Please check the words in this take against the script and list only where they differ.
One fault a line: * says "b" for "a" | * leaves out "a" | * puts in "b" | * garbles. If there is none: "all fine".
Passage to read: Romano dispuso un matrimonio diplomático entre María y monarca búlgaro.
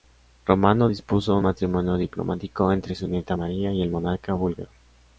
* puts in "su nieta"
* puts in "el"